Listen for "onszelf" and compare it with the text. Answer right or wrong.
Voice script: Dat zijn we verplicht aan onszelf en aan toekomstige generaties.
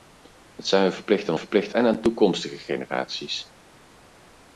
wrong